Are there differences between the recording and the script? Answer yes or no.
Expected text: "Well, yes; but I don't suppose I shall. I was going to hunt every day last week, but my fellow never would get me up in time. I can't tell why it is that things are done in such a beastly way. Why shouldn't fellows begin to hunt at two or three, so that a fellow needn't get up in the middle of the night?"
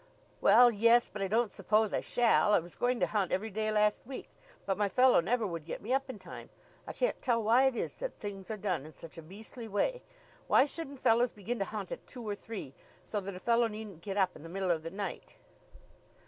no